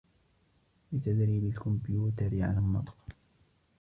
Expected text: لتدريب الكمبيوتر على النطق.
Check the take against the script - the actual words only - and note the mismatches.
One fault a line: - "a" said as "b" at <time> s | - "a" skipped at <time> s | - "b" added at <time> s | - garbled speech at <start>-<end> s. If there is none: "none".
none